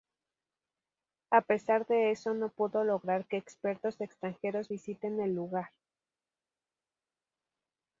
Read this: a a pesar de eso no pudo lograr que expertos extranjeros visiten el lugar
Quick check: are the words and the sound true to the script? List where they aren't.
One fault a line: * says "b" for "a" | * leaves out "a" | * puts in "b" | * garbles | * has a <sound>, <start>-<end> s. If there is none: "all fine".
* leaves out "a"